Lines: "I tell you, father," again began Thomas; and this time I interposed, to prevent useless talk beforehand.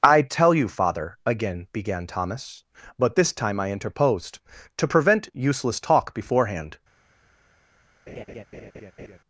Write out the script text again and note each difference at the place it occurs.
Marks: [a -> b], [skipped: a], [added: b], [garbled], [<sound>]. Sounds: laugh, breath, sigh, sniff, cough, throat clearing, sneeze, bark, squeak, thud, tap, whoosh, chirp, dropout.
"I tell you, father," again began Thomas; [and -> but] this time I interposed, to prevent useless talk beforehand. [laugh]